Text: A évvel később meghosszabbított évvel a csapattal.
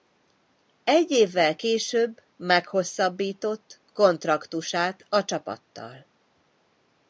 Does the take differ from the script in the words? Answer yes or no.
yes